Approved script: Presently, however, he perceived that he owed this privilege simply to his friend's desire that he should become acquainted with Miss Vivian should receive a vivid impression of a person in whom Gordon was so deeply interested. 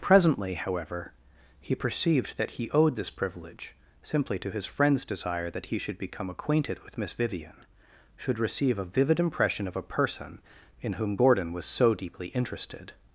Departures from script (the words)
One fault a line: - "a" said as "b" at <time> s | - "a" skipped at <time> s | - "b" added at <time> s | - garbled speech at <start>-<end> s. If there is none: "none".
none